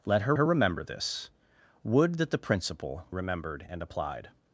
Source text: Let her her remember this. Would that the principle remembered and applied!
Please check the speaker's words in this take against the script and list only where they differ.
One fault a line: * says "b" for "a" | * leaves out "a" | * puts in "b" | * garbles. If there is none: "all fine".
all fine